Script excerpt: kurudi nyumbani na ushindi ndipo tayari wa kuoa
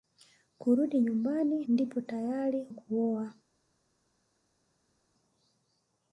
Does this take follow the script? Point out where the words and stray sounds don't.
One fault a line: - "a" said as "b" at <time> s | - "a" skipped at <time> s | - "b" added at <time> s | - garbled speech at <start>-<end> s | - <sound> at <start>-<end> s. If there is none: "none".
- "na ushindi" skipped at 1.6 s
- "wa" skipped at 2.7 s